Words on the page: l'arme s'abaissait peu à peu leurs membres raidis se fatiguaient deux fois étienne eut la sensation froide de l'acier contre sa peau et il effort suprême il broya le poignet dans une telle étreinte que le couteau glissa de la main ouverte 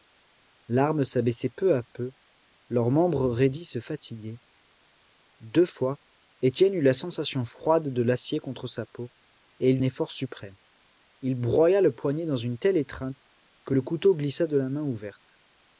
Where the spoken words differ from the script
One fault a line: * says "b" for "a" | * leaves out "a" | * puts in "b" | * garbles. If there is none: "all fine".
all fine